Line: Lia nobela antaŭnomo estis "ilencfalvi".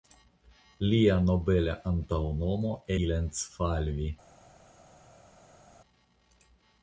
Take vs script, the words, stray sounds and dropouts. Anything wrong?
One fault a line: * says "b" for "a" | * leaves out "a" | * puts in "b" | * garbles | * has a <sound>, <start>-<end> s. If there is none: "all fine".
* leaves out "estis"